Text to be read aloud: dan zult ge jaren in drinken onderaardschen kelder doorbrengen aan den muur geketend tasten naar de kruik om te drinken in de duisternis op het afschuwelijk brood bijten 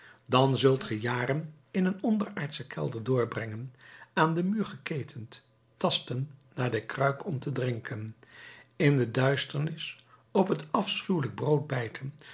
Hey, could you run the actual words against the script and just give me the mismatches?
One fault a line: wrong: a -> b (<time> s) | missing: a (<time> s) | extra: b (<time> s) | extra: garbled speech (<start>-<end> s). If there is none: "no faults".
wrong: drinken -> een (1.9 s)